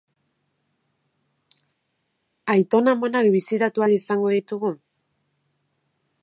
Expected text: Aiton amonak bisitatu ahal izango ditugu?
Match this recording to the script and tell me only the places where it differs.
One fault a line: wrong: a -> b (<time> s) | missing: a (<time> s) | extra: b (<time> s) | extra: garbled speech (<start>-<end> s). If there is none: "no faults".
no faults